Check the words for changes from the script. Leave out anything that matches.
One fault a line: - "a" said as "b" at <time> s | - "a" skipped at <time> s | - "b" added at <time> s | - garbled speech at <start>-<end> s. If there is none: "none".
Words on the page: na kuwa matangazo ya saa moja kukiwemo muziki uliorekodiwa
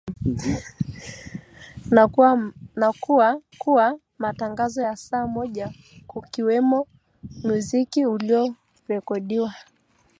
- "kuwa" added at 3.6 s